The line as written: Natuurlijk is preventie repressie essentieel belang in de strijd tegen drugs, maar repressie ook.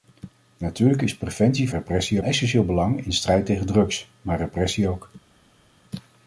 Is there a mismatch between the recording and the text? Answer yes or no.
no